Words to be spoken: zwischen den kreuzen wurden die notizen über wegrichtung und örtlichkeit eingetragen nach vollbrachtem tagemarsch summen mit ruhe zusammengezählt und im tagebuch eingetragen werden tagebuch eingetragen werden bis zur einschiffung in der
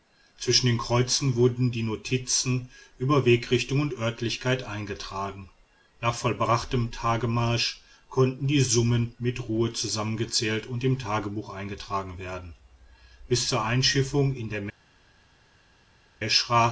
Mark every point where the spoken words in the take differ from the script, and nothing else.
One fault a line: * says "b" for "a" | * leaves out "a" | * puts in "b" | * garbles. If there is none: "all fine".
* puts in "konnten die"
* leaves out "tagebuch eingetragen werden"